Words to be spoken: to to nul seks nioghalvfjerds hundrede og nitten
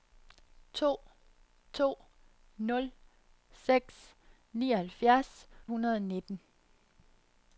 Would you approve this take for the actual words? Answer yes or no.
yes